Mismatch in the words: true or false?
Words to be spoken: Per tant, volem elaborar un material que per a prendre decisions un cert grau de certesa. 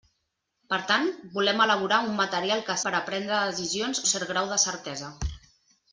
false